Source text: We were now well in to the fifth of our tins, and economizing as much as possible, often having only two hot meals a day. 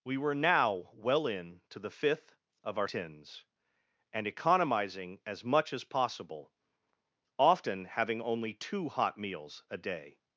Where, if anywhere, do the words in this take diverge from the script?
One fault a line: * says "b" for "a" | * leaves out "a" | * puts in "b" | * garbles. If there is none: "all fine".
all fine